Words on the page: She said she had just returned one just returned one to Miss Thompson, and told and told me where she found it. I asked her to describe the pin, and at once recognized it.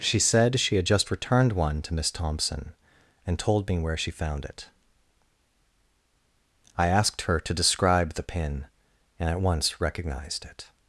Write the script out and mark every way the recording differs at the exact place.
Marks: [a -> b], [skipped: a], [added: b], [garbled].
She said she had just returned one [skipped: just returned one] to Miss Thompson, and told [skipped: and told] me where she found it. I asked her to describe the pin, and at once recognized it.